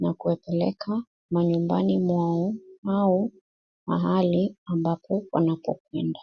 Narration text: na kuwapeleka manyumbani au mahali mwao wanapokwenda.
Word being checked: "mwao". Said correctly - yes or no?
no